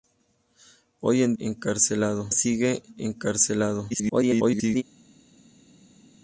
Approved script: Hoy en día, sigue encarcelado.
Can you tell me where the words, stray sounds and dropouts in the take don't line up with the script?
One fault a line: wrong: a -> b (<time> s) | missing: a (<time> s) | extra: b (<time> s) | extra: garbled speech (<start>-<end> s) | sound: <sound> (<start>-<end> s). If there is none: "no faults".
wrong: día -> encarcelado (1.4 s)
extra: garbled speech (3.9-4.8 s)